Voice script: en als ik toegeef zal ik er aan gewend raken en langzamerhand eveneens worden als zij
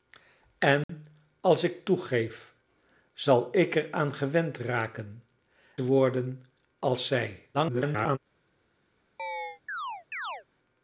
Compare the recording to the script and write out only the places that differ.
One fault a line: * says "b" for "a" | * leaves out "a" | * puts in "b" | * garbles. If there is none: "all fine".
* leaves out "en langzamerhand eveneens"
* garbles